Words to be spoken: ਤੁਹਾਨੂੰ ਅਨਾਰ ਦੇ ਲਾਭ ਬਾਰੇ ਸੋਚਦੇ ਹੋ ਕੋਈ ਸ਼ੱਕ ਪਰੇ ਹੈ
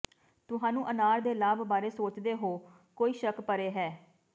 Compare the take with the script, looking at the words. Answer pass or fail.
pass